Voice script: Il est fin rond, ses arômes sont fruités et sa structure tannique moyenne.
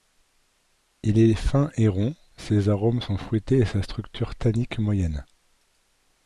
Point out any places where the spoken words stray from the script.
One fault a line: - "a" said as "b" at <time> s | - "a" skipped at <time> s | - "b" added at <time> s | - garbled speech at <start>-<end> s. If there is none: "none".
- "et" added at 1.8 s